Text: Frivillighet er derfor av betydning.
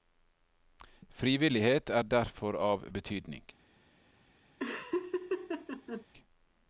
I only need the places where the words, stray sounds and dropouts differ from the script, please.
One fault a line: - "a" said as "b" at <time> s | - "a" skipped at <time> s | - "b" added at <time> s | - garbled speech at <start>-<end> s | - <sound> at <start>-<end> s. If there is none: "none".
- laugh at 4.6-6.1 s